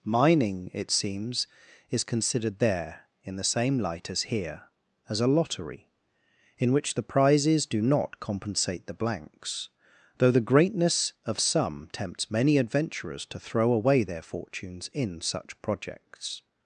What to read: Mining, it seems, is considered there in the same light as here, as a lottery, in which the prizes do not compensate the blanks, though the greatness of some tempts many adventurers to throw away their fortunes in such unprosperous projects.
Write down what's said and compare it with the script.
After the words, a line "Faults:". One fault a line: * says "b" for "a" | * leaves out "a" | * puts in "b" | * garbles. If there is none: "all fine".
Mining, it seems, is considered there in the same light as here, as a lottery, in which the prizes do not compensate the blanks, though the greatness of some tempts many adventurers to throw away their fortunes in such projects.
Faults:
* leaves out "unprosperous"